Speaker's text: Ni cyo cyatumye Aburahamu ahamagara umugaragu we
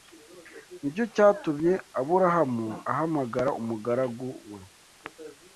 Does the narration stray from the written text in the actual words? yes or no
no